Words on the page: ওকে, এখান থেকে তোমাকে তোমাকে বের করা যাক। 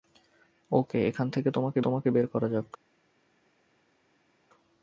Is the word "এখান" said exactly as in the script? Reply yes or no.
yes